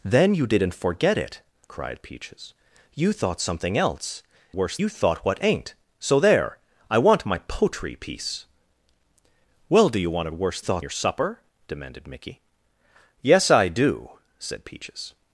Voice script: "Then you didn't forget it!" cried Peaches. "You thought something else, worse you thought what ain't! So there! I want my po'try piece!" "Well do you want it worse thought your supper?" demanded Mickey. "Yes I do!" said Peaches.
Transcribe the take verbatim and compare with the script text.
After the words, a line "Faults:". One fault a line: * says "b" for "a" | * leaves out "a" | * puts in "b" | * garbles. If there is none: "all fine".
"Then you didn't forget it!" cried Peaches. "You thought something else, worse you thought what ain't! So there! I want my po'try piece!" "Well do you want it worse thought your supper?" demanded Mickey. "Yes I do!" said Peaches.
Faults:
all fine